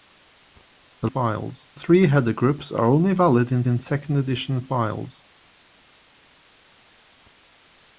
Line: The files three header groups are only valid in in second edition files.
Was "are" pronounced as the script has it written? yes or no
yes